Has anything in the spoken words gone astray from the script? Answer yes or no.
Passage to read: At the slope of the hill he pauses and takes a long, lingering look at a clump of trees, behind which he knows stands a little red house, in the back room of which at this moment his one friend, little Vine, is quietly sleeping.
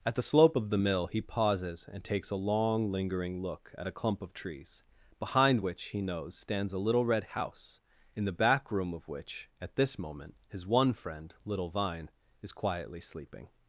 yes